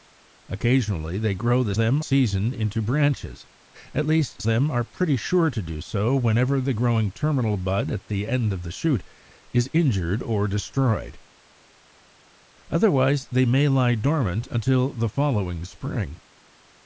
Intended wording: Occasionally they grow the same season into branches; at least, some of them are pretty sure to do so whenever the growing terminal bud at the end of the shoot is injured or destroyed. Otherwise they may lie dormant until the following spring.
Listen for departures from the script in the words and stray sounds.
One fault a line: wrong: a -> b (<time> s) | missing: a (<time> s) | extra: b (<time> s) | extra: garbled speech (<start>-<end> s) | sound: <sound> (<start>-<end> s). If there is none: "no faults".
wrong: same -> them (1.8 s)
missing: some of (4.4 s)